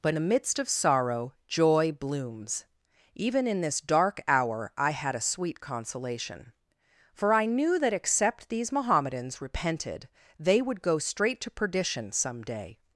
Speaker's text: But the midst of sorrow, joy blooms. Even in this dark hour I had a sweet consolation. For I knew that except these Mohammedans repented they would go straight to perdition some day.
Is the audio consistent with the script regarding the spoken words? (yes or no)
yes